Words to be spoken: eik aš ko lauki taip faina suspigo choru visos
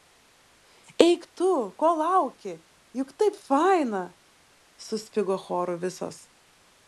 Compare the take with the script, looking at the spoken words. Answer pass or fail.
fail